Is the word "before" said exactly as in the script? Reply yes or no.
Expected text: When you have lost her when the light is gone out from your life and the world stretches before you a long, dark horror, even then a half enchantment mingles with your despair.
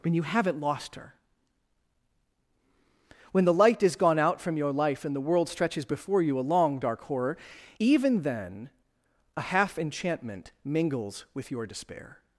yes